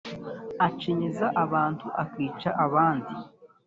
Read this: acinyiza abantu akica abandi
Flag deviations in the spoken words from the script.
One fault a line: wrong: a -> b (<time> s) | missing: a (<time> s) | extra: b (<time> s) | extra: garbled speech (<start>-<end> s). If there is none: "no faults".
no faults